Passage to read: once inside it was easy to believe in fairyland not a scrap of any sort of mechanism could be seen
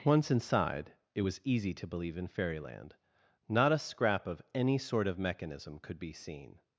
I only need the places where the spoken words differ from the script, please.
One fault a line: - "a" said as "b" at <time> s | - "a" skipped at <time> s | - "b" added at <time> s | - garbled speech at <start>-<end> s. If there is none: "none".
none